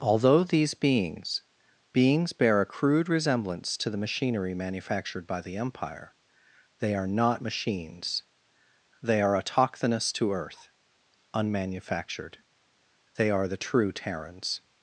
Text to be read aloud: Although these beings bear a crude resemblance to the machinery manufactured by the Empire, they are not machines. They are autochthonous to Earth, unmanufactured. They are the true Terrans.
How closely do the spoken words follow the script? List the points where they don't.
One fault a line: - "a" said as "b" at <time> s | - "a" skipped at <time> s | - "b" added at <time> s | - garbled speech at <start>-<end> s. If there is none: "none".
- "beings" added at 1.9 s